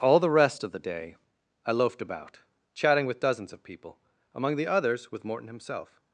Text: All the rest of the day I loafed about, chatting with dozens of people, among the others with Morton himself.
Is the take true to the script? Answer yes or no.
yes